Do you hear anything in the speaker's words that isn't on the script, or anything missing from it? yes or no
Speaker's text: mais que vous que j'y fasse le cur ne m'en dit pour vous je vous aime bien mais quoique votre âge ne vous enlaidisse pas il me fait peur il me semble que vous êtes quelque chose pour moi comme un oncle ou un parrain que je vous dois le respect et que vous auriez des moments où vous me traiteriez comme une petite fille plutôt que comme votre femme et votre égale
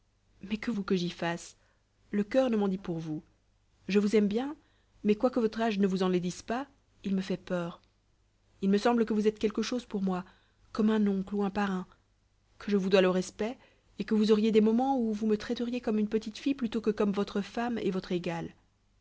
no